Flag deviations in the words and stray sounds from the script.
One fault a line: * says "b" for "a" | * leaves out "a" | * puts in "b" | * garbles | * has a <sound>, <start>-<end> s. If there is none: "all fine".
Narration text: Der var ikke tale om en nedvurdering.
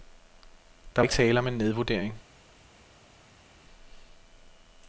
* leaves out "var"